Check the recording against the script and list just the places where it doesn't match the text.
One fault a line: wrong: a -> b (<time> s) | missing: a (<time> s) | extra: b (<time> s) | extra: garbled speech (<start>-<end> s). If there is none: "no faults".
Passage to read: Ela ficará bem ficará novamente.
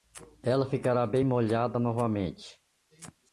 wrong: ficará -> molhada (1.2 s)